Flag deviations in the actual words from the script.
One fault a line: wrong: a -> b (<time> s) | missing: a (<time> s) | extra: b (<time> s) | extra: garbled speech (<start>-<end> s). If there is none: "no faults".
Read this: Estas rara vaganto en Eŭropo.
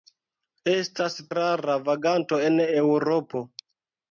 no faults